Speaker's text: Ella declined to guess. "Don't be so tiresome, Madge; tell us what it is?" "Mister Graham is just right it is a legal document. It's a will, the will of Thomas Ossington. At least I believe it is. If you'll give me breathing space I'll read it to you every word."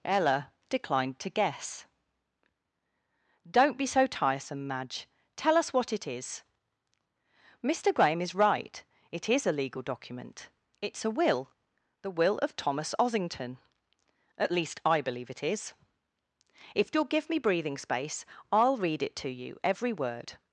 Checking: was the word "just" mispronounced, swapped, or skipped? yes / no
yes